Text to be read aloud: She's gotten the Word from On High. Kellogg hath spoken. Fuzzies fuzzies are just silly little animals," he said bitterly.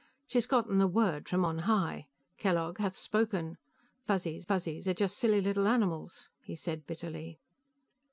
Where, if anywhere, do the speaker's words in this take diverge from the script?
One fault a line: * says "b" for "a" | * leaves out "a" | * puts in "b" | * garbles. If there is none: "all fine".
all fine